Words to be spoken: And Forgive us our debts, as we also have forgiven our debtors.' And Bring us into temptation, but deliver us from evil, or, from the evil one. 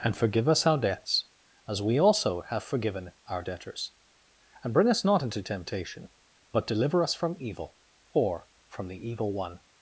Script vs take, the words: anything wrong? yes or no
yes